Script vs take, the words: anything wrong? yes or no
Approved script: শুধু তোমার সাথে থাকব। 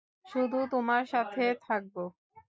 no